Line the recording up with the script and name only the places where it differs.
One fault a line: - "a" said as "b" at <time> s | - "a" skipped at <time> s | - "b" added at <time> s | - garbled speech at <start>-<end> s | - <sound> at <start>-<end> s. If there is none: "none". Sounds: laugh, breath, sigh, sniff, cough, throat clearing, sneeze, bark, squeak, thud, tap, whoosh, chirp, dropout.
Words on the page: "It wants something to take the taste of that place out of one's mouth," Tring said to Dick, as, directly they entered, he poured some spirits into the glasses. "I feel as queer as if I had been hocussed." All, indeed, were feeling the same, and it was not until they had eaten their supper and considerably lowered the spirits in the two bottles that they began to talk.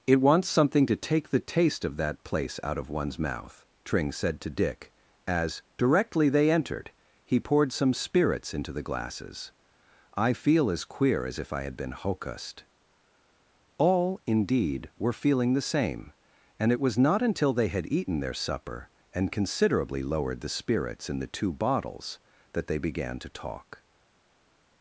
none